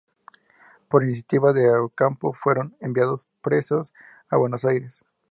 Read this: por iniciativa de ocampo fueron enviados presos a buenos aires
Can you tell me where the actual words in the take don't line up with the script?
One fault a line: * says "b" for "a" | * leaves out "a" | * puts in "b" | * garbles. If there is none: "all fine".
all fine